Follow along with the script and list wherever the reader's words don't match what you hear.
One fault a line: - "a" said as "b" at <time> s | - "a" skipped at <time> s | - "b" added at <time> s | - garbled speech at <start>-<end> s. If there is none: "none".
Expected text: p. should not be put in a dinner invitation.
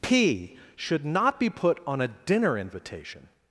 - "in" said as "on" at 1.9 s